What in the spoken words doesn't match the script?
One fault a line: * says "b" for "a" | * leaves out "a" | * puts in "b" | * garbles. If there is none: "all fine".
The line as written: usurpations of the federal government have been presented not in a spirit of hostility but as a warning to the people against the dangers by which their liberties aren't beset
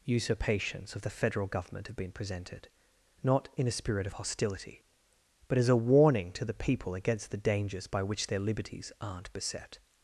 all fine